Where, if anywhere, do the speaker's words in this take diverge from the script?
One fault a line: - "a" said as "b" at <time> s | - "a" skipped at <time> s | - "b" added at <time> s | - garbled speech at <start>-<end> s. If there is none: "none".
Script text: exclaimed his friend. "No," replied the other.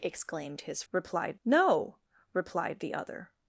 - "friend" said as "replied" at 0.9 s